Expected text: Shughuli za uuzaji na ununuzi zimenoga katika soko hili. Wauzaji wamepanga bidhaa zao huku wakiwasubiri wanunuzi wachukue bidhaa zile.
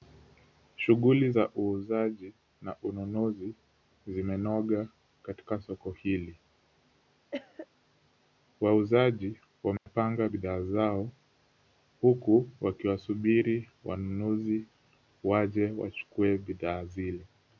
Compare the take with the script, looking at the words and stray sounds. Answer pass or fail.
fail